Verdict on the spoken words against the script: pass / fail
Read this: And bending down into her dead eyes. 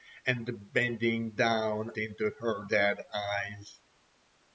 pass